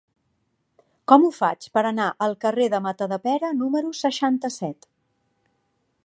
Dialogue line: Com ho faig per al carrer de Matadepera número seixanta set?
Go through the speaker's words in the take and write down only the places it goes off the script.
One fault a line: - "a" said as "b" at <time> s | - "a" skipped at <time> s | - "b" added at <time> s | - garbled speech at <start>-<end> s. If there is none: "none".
- "anar" added at 1.9 s